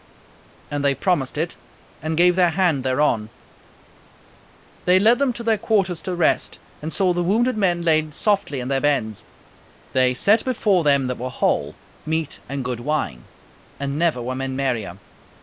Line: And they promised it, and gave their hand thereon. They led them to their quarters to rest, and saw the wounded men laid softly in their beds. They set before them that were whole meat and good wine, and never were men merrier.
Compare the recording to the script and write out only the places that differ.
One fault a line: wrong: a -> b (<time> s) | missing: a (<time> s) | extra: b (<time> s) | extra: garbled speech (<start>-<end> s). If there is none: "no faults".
no faults